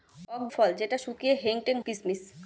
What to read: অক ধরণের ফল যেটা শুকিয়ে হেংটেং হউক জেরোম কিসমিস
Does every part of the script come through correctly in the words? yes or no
no